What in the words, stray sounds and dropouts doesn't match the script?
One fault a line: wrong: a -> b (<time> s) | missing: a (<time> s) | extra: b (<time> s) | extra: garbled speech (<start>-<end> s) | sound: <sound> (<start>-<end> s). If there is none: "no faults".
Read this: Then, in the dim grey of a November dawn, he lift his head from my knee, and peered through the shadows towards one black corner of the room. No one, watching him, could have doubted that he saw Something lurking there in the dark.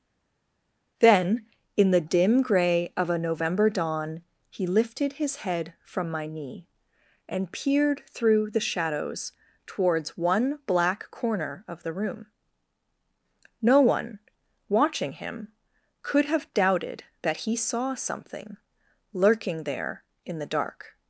wrong: lift -> lifted (4.7 s)